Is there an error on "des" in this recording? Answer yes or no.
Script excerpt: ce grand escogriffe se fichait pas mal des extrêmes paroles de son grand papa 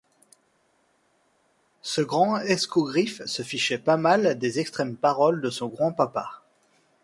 no